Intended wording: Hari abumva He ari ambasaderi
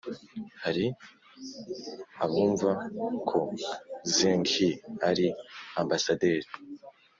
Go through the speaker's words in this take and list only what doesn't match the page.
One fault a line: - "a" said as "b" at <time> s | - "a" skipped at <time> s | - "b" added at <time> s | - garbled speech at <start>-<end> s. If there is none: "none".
- "ko Zheng" added at 3.3 s